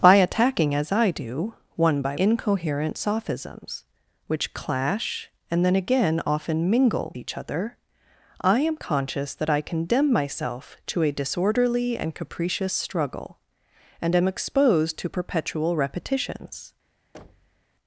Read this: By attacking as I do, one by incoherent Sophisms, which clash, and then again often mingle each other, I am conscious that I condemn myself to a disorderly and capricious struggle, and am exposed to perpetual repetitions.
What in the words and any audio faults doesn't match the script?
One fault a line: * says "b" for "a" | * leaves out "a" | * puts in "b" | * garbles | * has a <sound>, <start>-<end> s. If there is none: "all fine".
* has a thud, 17.1-17.6 s